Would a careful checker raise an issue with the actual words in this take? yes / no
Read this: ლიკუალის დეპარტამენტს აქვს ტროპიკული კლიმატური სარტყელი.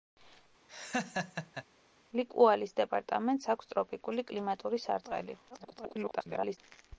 yes